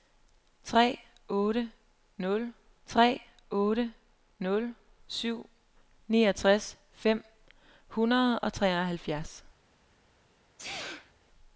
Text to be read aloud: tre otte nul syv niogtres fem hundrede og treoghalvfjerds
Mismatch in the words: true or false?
true